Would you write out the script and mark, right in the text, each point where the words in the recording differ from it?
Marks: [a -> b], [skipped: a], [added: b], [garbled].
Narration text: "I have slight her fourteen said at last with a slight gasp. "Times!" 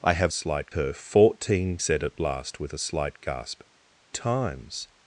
"I have slight her fourteen said at last with a slight gasp. "Times!"